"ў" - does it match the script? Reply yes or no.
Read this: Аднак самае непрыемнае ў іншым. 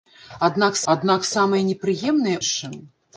no